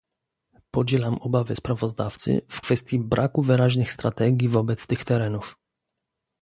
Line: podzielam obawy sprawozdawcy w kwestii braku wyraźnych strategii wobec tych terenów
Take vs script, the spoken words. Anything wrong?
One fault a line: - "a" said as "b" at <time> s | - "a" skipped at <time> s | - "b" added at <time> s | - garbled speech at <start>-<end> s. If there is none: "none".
none